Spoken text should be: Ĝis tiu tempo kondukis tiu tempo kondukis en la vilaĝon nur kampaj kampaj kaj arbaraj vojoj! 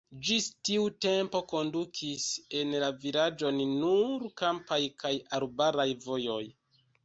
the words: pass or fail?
fail